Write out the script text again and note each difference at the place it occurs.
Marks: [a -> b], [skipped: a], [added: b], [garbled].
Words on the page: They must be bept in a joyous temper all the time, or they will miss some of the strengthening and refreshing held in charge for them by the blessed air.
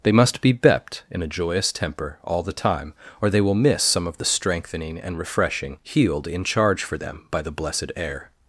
They must be bept in a joyous temper all the time, or they will miss some of the strengthening and refreshing [held -> healed] in charge for them by the blessed air.